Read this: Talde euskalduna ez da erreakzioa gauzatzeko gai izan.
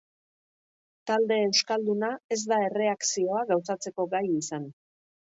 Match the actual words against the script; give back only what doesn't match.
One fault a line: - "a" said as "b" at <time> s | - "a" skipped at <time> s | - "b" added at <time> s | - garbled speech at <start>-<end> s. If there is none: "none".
none